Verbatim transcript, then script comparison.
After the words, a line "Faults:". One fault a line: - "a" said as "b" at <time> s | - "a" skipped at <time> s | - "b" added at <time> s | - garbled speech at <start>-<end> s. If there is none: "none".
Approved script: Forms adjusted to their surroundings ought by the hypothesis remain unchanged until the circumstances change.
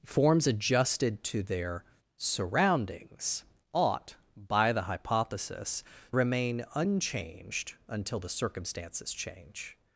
Forms adjusted to their surroundings ought by the hypothesis remain unchanged until the circumstances change.
Faults:
none